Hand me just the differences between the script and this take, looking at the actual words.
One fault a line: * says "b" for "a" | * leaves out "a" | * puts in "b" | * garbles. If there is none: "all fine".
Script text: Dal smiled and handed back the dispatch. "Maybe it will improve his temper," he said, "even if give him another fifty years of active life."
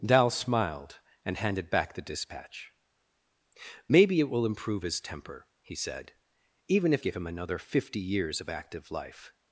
all fine